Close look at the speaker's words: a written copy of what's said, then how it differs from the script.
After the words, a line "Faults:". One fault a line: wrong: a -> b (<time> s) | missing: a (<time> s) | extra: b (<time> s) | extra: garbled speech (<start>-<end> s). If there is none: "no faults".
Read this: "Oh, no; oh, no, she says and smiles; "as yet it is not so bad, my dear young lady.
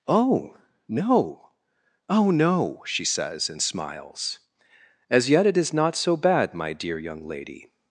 "Oh, no; oh, no, she says and smiles; "as yet it is not so bad, my dear young lady.
Faults:
no faults